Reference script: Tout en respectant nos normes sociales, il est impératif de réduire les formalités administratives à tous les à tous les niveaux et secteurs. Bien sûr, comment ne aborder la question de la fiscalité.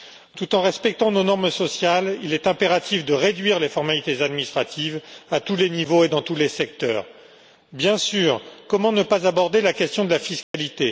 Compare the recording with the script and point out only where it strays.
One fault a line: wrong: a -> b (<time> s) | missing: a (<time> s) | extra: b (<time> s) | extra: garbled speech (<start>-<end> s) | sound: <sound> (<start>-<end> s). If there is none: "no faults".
wrong: à -> niveaux et dans (5.7 s)
missing: niveaux et (6.5 s)
extra: pas (9.0 s)
sound: dropout (10.4-10.5 s)